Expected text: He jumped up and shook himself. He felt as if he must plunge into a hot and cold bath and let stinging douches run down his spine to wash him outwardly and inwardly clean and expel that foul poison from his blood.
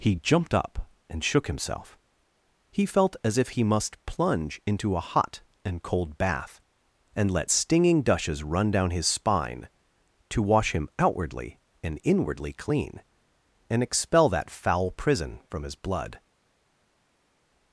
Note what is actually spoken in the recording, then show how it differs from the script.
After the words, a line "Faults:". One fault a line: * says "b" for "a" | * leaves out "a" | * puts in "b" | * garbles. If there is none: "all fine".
He jumped up and shook himself. He felt as if he must plunge into a hot and cold bath and let stinging douches run down his spine to wash him outwardly and inwardly clean and expel that foul prison from his blood.
Faults:
* says "prison" for "poison"